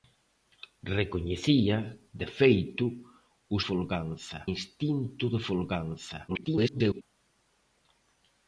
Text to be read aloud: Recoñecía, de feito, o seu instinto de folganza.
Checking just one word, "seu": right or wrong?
wrong